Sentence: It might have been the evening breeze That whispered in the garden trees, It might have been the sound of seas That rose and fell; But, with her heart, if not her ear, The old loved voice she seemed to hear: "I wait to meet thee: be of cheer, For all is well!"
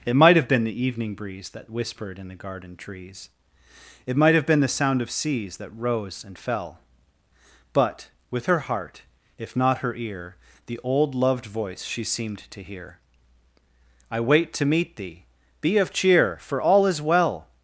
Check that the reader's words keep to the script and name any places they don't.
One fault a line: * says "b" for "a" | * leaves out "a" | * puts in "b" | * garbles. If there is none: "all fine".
all fine